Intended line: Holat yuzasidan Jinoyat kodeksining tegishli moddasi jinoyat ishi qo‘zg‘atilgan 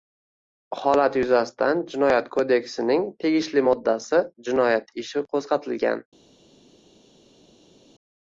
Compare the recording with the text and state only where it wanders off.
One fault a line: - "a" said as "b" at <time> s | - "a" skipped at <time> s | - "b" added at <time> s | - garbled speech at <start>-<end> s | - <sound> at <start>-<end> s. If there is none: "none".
none